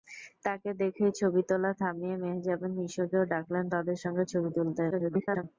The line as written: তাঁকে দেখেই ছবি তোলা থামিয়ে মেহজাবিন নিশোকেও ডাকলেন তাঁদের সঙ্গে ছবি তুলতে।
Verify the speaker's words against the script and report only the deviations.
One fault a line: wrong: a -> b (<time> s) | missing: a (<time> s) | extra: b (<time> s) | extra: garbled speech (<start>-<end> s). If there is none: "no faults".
extra: garbled speech (4.9-5.4 s)